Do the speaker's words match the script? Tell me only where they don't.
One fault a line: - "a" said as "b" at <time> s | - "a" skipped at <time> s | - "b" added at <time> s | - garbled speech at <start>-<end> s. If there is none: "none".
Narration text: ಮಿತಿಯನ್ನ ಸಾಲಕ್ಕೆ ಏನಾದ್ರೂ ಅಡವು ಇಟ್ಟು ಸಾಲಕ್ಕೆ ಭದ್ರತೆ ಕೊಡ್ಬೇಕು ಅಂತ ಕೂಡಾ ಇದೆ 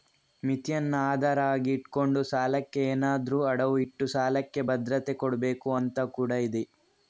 - "ಆಧಾರ ಆಗಿ ಇಟ್ಕೊಂಡು" added at 1.1 s